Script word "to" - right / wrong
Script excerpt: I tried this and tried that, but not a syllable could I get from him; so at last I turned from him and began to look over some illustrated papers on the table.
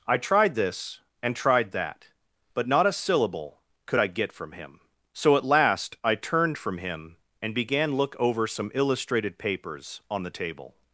wrong